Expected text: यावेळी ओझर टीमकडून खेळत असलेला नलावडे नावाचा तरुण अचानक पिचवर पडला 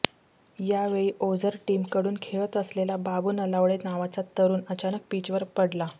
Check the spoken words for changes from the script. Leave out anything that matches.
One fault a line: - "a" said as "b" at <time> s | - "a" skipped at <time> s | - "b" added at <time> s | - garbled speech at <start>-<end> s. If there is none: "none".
- "बाबू" added at 3.0 s